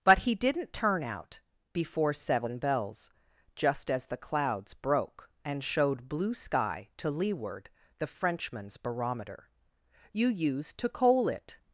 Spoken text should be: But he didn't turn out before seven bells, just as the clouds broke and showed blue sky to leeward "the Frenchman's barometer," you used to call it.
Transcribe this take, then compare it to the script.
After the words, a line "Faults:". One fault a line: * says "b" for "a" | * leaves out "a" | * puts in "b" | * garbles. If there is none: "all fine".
But he didn't turn out before seven bells, just as the clouds broke and showed blue sky to leeward "the Frenchman's barometer," you used to coal it.
Faults:
* says "coal" for "call"